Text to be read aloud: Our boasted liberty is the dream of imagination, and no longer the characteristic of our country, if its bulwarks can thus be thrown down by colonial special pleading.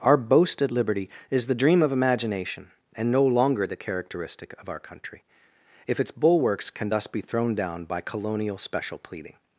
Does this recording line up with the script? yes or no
yes